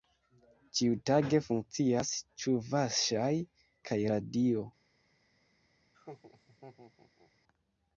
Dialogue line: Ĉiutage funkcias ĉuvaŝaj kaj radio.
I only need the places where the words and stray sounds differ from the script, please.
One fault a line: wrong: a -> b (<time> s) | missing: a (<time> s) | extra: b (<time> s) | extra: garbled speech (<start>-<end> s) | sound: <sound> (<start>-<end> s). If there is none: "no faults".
sound: laugh (5.9-7.3 s)